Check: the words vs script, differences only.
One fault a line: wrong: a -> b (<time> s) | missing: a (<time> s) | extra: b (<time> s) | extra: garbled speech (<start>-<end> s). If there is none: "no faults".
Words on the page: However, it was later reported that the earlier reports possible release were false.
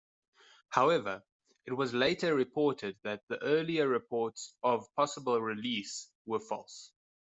extra: of (4.6 s)